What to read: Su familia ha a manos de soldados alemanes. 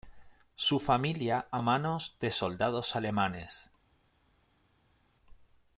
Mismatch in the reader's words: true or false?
false